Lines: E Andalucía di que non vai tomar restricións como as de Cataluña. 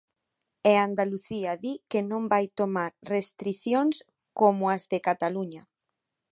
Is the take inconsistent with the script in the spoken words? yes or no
no